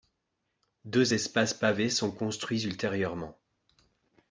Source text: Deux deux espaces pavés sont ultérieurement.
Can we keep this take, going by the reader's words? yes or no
no